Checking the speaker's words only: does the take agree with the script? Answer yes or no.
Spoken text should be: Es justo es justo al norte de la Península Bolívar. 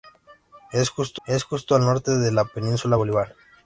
yes